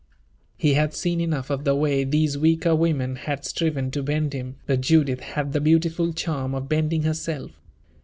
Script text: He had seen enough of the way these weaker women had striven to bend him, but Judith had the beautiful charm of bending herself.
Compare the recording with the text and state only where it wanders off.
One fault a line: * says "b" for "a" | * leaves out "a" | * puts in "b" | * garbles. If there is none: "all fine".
all fine